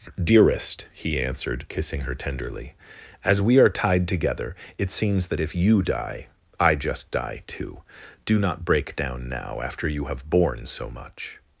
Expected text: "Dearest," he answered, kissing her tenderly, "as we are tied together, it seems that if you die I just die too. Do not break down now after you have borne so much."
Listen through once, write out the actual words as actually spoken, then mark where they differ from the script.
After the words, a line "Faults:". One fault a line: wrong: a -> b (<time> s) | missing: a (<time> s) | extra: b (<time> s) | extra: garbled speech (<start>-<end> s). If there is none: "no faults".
"Dearest," he answered, kissing her tenderly, "as we are tied together, it seems that if you die I just die too. Do not break down now after you have borne so much."
Faults:
no faults